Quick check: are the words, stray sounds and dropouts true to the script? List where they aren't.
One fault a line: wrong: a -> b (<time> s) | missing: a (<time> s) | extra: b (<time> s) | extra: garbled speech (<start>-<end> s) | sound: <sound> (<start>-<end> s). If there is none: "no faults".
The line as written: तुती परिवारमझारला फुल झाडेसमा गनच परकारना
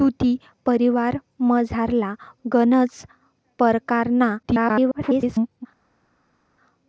missing: फुल झाडेसमा (2.1 s)
extra: garbled speech (4.4-5.7 s)